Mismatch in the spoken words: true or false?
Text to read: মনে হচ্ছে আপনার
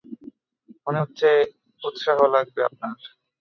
true